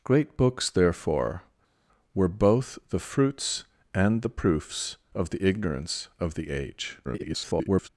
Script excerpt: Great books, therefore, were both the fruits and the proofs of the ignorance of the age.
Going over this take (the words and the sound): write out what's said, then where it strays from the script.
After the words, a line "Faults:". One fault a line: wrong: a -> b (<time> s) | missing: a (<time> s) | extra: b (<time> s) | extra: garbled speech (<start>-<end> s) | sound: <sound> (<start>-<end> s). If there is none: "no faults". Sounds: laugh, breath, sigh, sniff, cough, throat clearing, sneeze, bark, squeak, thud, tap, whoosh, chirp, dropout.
Great books, therefore, were both the fruits and the proofs of the ignorance of the age. [garbled]
Faults:
extra: garbled speech (7.0-7.9 s)